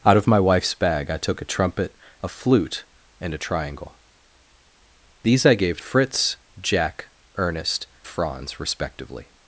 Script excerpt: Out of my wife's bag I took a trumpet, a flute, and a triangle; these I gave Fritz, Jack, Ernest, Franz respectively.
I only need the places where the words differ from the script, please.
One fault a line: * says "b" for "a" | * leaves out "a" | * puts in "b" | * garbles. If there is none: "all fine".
all fine